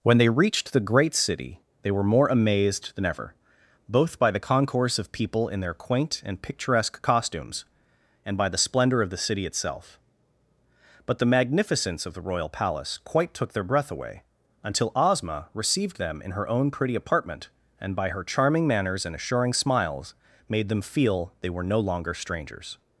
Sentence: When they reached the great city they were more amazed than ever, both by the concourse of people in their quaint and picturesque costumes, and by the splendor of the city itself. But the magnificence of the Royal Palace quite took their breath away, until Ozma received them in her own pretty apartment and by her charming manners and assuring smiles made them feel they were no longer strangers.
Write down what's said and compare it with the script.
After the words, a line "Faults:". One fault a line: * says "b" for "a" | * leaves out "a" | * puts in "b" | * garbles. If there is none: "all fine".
When they reached the great city they were more amazed than ever, both by the concourse of people in their quaint and picturesque costumes, and by the splendor of the city itself. But the magnificence of the Royal Palace quite took their breath away, until Ozma received them in her own pretty apartment and by her charming manners and assuring smiles made them feel they were no longer strangers.
Faults:
all fine